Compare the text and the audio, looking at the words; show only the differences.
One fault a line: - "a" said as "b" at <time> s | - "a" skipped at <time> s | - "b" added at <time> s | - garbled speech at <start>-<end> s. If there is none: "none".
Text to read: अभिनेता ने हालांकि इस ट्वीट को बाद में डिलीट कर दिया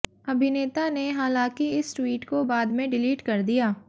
none